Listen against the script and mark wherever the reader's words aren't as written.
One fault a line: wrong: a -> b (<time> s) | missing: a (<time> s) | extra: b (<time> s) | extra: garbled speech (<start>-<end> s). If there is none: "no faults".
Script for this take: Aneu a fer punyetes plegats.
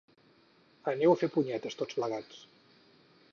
extra: tots (1.8 s)